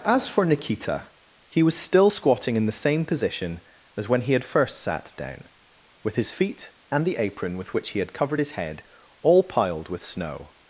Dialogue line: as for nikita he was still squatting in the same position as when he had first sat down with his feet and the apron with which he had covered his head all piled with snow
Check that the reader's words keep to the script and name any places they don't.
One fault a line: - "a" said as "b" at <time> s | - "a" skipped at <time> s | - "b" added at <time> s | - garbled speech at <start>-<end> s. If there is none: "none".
none